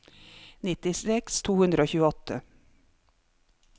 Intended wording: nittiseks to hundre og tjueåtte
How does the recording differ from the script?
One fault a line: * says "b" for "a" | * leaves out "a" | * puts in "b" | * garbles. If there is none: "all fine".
all fine